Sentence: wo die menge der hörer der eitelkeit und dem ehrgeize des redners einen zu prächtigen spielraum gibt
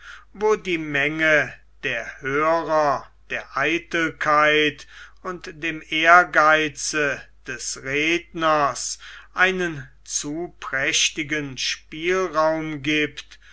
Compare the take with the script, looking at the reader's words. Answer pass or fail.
pass